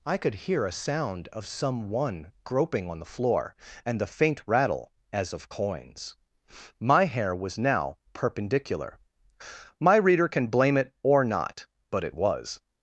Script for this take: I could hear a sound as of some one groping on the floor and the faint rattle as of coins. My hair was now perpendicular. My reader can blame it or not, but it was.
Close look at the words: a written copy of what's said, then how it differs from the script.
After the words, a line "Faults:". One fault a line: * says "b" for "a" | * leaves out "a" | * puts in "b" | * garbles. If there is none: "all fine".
I could hear a sound of some one groping on the floor and the faint rattle as of coins. My hair was now perpendicular. My reader can blame it or not, but it was.
Faults:
* leaves out "as"